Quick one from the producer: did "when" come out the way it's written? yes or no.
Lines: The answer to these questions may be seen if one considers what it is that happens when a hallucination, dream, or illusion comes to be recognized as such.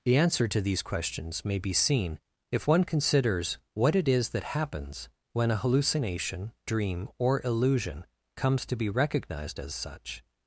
yes